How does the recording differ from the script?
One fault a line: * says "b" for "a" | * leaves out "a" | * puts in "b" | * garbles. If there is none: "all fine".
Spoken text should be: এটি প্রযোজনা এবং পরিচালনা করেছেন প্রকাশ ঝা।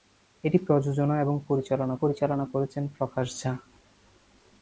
* puts in "পরিচালনা"